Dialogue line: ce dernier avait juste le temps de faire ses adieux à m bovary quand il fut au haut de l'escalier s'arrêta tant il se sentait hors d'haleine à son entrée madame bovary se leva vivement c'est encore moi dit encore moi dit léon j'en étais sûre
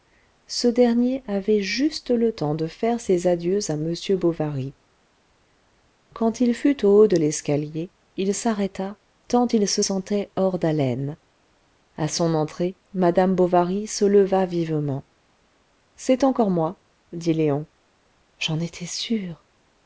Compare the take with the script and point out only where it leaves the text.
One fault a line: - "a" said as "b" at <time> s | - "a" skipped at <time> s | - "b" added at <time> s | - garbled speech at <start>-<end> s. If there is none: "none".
- "il" added at 8.2 s
- "encore moi dit" skipped at 17.3 s